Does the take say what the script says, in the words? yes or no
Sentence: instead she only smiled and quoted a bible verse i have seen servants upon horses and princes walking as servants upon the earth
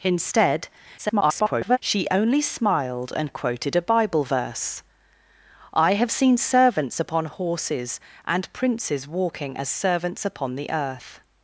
no